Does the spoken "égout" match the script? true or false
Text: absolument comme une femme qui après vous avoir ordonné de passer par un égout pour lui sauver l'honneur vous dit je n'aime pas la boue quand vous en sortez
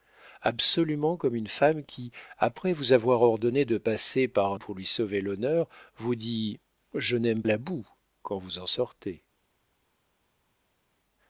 false